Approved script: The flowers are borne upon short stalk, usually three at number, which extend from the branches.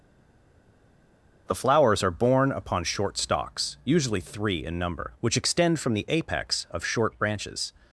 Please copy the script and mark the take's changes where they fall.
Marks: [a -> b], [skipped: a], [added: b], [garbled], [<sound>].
The flowers are borne upon short [stalk, -> stalks] usually three [at -> in] number, which extend from the [added: apex of short] branches.